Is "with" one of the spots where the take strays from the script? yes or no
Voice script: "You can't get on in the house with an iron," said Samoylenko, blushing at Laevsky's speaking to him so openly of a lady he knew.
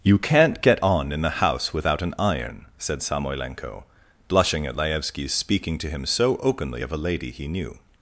yes